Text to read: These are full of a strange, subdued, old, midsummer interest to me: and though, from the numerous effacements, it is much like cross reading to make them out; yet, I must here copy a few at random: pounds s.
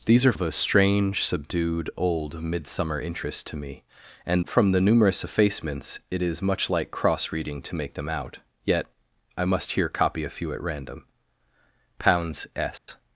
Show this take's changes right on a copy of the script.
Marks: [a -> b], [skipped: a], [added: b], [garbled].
These are [skipped: full] of a strange, subdued, old, midsummer interest to me: and [skipped: though,] from the numerous effacements, it is much like cross reading to make them out; yet, I must here copy a few at random: pounds s.